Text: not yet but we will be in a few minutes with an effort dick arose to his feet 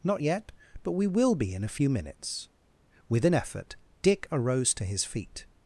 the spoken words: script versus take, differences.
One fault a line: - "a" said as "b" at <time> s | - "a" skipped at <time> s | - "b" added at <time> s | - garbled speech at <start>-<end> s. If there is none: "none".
none